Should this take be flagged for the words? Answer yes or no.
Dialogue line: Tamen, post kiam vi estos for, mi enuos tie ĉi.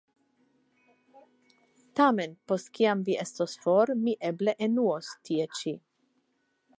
yes